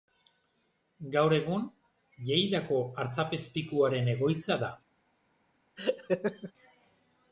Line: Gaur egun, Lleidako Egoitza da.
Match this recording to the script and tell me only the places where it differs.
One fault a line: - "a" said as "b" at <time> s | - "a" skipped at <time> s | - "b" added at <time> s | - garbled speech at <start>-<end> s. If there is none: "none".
- "Artzapezpikuaren" added at 3.0 s